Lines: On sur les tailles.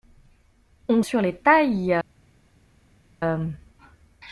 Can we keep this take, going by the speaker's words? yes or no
yes